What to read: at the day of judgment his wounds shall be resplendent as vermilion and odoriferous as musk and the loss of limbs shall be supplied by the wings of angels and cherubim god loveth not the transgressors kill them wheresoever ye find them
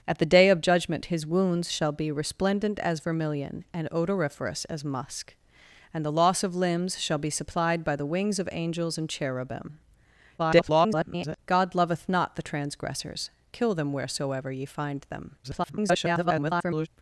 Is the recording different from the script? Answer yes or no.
yes